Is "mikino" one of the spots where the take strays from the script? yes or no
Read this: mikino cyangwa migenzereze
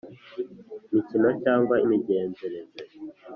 no